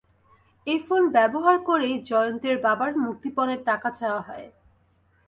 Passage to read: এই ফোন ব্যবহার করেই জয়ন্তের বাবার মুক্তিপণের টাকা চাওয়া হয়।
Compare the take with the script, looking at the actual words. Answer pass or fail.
pass